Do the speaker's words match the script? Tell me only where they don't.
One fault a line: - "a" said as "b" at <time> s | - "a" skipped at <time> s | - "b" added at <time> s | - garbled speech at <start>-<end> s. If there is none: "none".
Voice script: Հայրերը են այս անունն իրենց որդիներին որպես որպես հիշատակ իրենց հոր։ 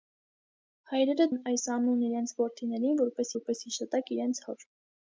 none